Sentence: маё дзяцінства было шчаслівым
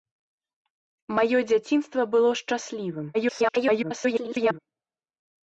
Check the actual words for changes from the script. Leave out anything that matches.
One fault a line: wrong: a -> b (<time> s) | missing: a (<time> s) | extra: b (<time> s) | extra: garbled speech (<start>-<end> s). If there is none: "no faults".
extra: garbled speech (3.1-4.6 s)